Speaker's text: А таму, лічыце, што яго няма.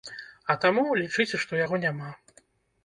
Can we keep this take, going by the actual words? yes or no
yes